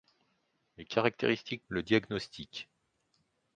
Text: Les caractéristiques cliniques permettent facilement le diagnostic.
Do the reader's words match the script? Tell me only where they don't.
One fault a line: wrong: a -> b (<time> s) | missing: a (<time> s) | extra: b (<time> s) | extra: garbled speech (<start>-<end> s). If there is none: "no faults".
missing: cliniques permettent facilement (1.6 s)